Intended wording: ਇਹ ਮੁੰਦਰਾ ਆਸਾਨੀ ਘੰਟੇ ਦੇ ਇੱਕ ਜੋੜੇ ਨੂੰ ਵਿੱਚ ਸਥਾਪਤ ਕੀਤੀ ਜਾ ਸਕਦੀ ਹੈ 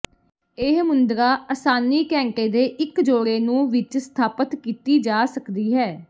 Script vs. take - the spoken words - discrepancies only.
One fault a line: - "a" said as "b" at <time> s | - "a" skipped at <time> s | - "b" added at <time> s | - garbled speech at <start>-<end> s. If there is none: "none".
none